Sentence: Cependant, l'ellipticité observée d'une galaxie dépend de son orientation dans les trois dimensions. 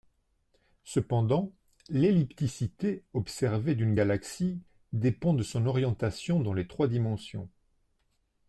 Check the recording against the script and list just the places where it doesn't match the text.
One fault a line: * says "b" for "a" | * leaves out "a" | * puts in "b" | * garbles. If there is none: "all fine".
all fine